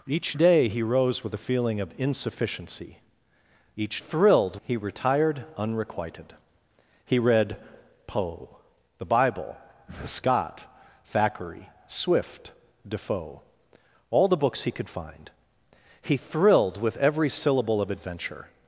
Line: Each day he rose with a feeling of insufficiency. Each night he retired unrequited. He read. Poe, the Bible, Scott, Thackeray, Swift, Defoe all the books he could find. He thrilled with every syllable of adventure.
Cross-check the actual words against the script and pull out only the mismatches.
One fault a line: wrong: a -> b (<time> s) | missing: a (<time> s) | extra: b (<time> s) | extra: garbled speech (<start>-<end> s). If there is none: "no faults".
wrong: night -> thrilled (4.0 s)